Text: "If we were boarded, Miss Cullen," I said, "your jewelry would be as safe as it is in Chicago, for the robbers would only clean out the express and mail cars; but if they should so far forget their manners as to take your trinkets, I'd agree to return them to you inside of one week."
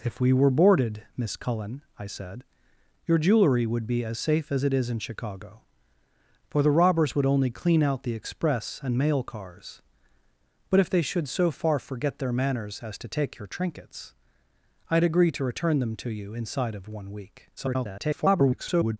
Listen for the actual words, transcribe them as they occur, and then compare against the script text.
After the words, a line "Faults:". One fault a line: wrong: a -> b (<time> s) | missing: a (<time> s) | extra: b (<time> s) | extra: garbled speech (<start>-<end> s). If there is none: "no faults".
"If we were boarded, Miss Cullen," I said, "your jewelry would be as safe as it is in Chicago, for the robbers would only clean out the express and mail cars; but if they should so far forget their manners as to take your trinkets, I'd agree to return them to you inside of one week." [garbled]
Faults:
extra: garbled speech (17.6-19.0 s)